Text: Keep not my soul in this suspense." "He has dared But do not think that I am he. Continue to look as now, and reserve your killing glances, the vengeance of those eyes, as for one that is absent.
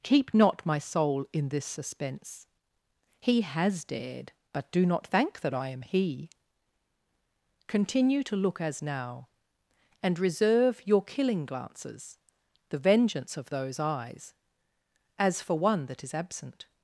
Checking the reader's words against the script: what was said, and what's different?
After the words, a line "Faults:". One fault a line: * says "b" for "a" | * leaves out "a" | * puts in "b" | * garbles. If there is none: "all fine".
Keep not my soul in this suspense." "He has dared But do not thank that I am he. Continue to look as now, and reserve your killing glances, the vengeance of those eyes, as for one that is absent.
Faults:
* says "thank" for "think"